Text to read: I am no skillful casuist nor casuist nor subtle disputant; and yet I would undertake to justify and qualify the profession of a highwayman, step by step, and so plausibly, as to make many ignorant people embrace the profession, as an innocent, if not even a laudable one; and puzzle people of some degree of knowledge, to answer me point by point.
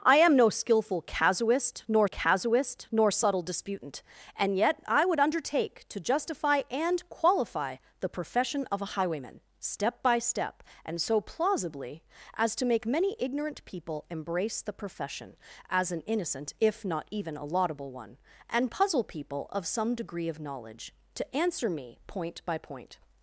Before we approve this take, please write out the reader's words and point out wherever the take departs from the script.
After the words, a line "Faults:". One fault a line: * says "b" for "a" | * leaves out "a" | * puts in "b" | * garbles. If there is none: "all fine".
I am no skillful casuist nor casuist nor subtle disputant; and yet I would undertake to justify and qualify the profession of a highwayman, step by step, and so plausibly, as to make many ignorant people embrace the profession, as an innocent, if not even a laudable one; and puzzle people of some degree of knowledge, to answer me point by point.
Faults:
all fine